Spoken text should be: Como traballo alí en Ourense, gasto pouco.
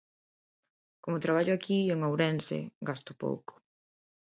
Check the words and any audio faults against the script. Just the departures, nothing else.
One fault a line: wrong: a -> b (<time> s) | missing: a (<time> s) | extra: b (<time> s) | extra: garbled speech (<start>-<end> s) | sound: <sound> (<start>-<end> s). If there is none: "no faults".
wrong: alí -> aquí (1.6 s)